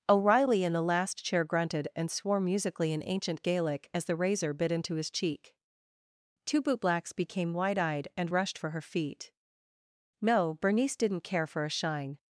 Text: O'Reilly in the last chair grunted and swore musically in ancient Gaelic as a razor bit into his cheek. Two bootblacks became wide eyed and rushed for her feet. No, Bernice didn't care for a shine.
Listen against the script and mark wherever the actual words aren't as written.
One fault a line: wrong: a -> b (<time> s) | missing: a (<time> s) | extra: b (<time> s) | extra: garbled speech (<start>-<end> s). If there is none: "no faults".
wrong: a -> the (4.0 s)